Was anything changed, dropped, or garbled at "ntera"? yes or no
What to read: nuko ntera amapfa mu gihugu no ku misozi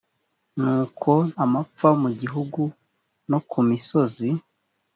yes